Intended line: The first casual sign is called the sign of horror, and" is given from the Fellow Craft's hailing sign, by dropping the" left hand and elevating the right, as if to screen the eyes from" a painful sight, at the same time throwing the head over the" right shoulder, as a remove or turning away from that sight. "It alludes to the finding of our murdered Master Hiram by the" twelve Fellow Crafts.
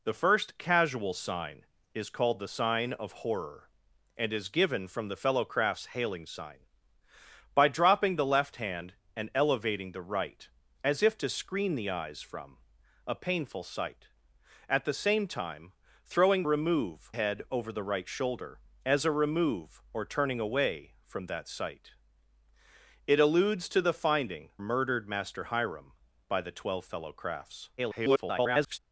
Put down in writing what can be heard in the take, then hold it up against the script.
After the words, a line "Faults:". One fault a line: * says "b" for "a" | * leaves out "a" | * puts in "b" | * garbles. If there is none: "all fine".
The first casual sign is called the sign of horror, and" is given from the Fellow Craft's hailing sign, by dropping the" left hand and elevating the right, as if to screen the eyes from" a painful sight, at the same time throwing remove head over the" right shoulder, as a remove or turning away from that sight. "It alludes to the finding murdered Master Hiram by the" twelve Fellow Crafts. [garbled]
Faults:
* says "remove" for "the"
* leaves out "of our"
* garbles